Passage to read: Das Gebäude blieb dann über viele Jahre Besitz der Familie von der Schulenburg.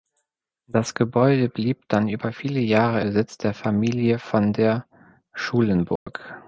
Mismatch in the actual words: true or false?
false